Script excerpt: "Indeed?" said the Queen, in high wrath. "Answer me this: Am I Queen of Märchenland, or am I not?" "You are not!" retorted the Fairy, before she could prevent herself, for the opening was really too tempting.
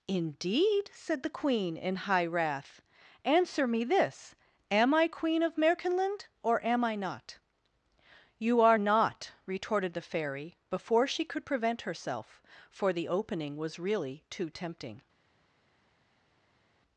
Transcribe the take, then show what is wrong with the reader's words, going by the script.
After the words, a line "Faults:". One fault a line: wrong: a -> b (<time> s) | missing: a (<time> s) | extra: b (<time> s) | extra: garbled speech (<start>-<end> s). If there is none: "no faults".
"Indeed?" said the Queen, in high wrath. "Answer me this: Am I Queen of Märchenland, or am I not?" "You are not!" retorted the Fairy, before she could prevent herself, for the opening was really too tempting.
Faults:
no faults